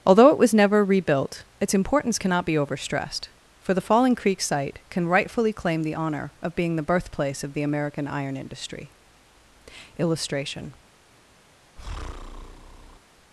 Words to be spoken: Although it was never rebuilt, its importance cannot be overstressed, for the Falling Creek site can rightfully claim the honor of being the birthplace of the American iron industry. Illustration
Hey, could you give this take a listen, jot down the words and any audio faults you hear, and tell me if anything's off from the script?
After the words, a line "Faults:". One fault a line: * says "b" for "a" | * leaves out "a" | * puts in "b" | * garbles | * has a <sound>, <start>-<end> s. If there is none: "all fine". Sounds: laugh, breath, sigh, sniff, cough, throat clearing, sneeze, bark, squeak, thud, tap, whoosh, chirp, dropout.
Although it was never rebuilt, its importance cannot be overstressed, for the Falling Creek site can rightfully claim the honor of being the birthplace of the American iron industry. Illustration
Faults:
* has a breath, 11.8-13.0 s